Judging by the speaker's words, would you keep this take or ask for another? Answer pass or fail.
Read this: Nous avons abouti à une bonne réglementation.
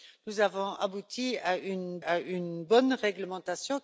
fail